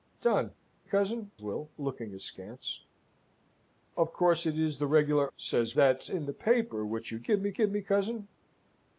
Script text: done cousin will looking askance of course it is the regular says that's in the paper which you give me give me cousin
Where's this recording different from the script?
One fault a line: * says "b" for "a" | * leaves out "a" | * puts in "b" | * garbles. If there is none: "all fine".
all fine